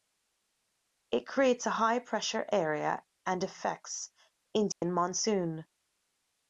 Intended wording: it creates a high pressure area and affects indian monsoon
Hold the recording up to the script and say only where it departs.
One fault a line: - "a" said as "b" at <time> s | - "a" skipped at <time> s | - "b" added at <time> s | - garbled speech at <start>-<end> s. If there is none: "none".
none